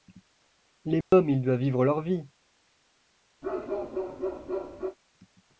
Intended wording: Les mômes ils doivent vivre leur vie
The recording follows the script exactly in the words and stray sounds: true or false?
false